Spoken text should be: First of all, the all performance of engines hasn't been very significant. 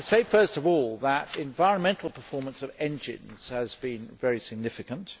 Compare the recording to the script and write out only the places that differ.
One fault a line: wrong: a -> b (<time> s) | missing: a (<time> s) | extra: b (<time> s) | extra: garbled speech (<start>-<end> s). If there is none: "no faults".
wrong: all -> environmental (1.4 s)
wrong: hasn't -> has (3.5 s)